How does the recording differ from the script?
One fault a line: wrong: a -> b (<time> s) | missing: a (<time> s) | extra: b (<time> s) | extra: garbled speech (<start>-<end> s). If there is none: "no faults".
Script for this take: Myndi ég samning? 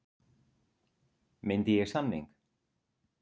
no faults